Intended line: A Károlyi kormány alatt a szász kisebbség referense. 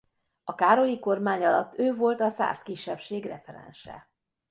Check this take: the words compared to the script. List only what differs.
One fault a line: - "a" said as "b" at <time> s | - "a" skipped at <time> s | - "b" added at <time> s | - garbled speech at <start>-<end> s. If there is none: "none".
- "ő volt" added at 1.8 s